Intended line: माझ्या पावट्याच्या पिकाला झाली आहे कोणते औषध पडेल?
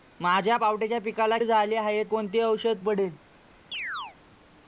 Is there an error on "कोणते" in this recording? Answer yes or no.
no